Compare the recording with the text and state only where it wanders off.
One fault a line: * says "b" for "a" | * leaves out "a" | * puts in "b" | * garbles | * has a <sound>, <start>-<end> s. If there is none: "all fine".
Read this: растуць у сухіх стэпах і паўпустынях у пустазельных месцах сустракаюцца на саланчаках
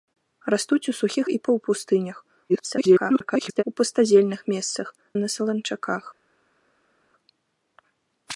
* leaves out "стэпах"
* garbles
* leaves out "сустракаюцца"